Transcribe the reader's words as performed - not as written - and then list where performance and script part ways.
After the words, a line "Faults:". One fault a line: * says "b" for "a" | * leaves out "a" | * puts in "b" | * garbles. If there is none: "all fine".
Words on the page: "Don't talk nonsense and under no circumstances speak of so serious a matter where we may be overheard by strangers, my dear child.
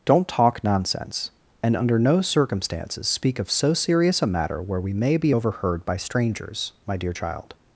"Don't talk nonsense and under no circumstances speak of so serious a matter where we may be overheard by strangers, my dear child.
Faults:
all fine